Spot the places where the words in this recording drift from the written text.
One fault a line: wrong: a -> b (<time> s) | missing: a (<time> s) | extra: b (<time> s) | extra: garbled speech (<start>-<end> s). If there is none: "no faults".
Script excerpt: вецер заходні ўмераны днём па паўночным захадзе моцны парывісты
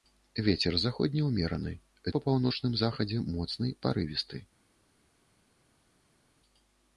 missing: днём (1.7 s)